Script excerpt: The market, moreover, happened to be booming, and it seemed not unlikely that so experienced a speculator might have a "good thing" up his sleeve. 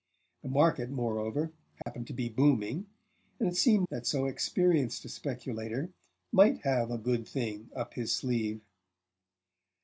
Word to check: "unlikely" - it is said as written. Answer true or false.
false